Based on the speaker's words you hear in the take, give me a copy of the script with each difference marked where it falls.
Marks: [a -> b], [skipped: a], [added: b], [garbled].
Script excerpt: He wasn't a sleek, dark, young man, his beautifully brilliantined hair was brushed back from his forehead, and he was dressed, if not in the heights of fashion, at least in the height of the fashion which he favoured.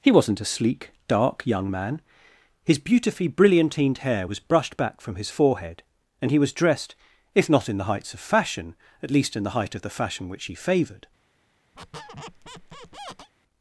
He wasn't a sleek, dark, young man, his beautifully brilliantined hair was brushed back from his forehead, and he was dressed, if not in the heights of fashion, at least in the height of the fashion which he favoured.